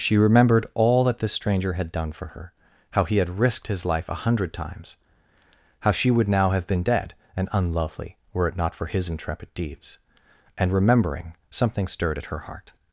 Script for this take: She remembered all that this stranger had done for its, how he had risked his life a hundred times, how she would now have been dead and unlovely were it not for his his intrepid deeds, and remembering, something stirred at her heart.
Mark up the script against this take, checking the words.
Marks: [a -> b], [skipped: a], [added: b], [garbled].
She remembered all that this stranger had done for [its, -> her] how he had risked his life a hundred times, how she would now have been dead and unlovely were it not for his [skipped: his] intrepid deeds, and remembering, something stirred at her heart.